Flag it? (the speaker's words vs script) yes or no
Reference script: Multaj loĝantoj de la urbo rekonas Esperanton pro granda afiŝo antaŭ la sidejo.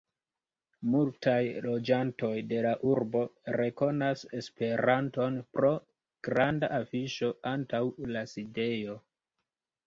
no